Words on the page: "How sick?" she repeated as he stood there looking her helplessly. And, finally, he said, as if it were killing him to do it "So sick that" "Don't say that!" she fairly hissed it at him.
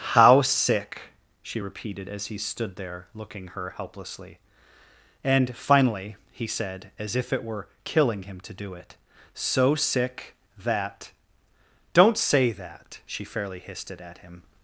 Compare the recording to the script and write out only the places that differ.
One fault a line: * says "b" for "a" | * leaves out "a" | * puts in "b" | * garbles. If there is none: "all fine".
all fine